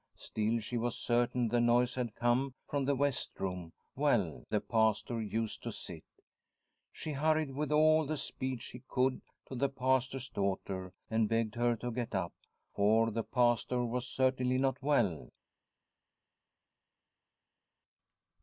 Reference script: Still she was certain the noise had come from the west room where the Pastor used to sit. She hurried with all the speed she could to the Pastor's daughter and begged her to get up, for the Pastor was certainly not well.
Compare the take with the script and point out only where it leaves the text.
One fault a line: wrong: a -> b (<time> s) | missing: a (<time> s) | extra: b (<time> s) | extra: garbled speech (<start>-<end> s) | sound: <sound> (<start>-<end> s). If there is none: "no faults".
wrong: where -> well (4.0 s)